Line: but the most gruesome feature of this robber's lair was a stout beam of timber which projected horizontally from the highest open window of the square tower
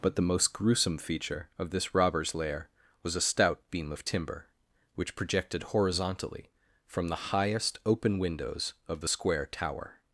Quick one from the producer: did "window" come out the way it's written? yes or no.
no